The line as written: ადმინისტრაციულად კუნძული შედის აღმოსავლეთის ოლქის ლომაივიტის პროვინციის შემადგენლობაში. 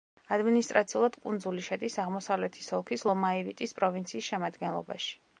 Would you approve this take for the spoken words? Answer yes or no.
yes